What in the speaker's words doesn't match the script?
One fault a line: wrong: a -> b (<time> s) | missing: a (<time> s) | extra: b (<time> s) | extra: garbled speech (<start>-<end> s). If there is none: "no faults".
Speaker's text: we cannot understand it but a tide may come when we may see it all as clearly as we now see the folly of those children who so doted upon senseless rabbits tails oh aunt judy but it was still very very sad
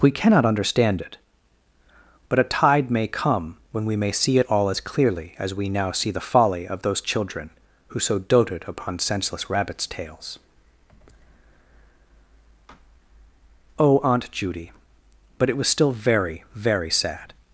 no faults